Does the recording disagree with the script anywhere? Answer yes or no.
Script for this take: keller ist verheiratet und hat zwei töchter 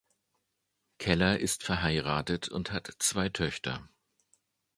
no